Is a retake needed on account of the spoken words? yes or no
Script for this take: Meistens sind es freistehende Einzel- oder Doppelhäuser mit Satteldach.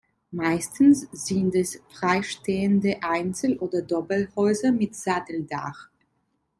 no